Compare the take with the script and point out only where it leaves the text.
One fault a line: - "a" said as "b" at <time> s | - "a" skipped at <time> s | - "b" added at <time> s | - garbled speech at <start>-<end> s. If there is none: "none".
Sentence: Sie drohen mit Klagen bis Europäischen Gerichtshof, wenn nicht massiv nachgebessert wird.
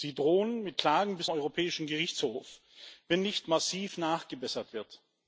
none